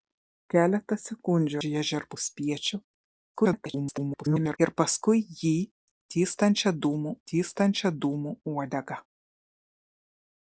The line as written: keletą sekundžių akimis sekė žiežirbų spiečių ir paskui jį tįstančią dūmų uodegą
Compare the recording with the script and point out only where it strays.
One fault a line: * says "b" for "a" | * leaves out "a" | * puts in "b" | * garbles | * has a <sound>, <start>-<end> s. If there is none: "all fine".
* leaves out "akimis sekė"
* garbles
* puts in "tįstančią dūmų"